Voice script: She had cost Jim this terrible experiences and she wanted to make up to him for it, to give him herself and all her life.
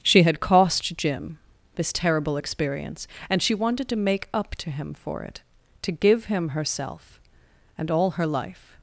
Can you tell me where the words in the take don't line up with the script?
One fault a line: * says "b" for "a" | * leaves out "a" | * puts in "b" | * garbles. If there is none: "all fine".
* says "experience" for "experiences"